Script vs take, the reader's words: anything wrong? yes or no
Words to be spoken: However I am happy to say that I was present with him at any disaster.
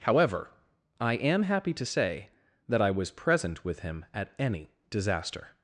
no